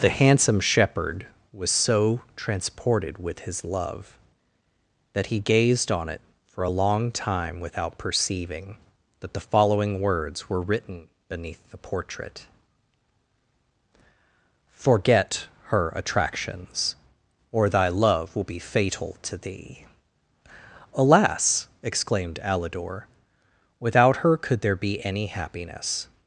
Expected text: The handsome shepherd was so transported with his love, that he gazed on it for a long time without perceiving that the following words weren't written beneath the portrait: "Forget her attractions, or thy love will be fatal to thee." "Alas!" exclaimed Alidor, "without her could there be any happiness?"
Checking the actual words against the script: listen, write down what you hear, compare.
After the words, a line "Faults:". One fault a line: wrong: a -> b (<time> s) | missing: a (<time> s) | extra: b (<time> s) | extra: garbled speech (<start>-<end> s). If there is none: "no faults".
The handsome shepherd was so transported with his love, that he gazed on it for a long time without perceiving that the following words were written beneath the portrait: "Forget her attractions, or thy love will be fatal to thee." "Alas!" exclaimed Alidor, "without her could there be any happiness?"
Faults:
wrong: weren't -> were (10.5 s)